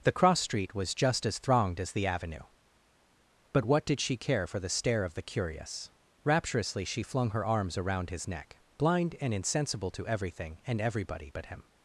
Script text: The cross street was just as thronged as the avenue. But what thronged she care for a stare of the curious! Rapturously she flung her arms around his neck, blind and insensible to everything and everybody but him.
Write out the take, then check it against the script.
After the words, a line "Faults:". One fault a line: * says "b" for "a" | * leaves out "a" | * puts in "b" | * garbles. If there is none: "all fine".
The cross street was just as thronged as the avenue. But what did she care for the stare of the curious! Rapturously she flung her arms around his neck, blind and insensible to everything and everybody but him.
Faults:
* says "did" for "thronged"
* says "the" for "a"